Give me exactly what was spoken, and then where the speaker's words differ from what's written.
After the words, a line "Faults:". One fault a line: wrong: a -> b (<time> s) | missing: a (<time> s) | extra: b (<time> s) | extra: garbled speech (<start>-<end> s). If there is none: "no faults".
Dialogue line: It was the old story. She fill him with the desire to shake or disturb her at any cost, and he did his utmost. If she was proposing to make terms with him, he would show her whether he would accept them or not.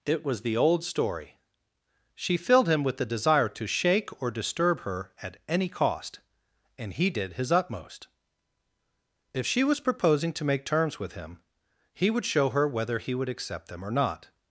It was the old story. She filled him with the desire to shake or disturb her at any cost, and he did his utmost. If she was proposing to make terms with him, he would show her whether he would accept them or not.
Faults:
wrong: fill -> filled (2.4 s)